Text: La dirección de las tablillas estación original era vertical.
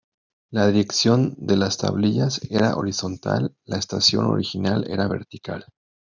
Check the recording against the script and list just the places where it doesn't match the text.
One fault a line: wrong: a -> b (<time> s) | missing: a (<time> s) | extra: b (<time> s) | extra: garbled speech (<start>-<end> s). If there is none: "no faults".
extra: era horizontal la (2.5 s)